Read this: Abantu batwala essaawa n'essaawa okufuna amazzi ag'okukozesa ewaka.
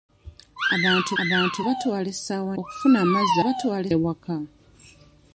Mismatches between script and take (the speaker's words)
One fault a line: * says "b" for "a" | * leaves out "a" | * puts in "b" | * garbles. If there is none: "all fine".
* puts in "abantu"
* leaves out "n'essaawa"
* says "batwala" for "ag'okukozesa"